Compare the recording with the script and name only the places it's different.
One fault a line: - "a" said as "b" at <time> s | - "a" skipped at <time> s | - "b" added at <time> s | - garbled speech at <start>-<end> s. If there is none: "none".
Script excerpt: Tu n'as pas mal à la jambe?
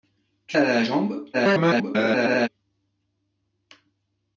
- "n'as pas mal" skipped at 0.6 s
- garbled speech at 1.3-2.5 s